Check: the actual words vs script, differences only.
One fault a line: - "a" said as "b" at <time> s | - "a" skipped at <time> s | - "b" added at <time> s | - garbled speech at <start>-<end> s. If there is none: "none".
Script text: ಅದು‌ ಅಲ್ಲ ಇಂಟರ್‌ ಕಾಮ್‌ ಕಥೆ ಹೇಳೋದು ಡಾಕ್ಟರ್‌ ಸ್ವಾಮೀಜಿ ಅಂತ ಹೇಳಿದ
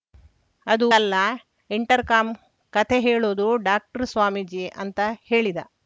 none